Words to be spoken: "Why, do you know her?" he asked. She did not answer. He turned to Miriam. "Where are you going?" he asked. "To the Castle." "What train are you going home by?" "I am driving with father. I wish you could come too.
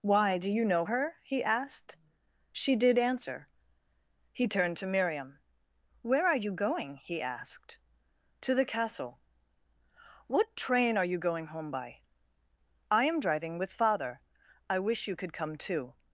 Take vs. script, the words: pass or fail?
fail